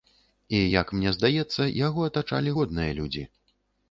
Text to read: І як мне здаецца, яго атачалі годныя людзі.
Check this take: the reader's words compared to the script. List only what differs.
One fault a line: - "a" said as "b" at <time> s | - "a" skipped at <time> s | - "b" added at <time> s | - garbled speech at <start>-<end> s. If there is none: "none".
none